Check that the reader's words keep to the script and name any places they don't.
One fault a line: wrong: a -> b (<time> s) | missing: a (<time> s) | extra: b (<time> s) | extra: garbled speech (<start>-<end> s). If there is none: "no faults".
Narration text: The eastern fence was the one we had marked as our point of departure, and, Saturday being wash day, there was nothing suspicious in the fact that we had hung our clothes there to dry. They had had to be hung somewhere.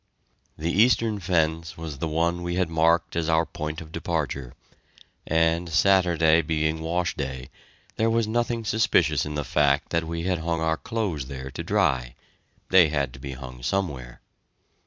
missing: had (13.1 s)